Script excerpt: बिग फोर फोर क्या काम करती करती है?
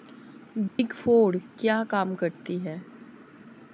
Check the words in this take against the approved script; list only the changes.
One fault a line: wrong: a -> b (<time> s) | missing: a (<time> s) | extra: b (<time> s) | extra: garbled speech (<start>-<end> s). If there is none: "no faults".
missing: फोर (1.4 s)
missing: करती (2.6 s)